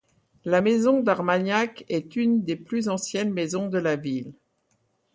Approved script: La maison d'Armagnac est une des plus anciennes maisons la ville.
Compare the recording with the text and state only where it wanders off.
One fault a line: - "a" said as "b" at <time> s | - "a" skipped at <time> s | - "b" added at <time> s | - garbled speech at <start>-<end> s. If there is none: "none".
- "de" added at 3.7 s